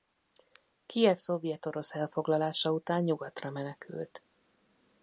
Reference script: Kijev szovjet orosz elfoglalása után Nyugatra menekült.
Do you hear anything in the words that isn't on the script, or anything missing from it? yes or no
no